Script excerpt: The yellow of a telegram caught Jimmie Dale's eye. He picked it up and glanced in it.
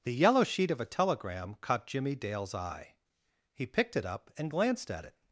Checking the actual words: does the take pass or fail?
fail